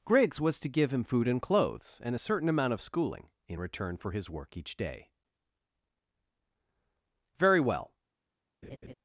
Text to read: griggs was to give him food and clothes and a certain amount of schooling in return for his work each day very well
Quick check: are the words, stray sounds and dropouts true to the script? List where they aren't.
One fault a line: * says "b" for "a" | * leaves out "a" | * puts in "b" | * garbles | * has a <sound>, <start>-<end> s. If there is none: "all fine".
* has a laugh, 8.6-8.9 s